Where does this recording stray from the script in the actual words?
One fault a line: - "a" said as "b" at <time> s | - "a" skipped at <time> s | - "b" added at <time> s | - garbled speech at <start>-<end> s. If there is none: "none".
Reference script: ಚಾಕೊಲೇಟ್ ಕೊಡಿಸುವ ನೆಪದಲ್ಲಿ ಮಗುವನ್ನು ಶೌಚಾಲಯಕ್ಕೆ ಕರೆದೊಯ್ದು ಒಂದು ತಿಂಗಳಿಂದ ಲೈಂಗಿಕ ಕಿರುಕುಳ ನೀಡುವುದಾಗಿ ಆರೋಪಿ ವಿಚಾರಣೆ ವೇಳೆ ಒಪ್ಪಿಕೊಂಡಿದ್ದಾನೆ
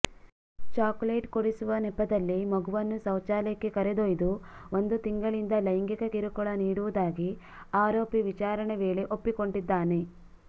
none